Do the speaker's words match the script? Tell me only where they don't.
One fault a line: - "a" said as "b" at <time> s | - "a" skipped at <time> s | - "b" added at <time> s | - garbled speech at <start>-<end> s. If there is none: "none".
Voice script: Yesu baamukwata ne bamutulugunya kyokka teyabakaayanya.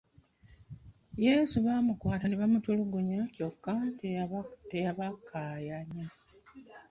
none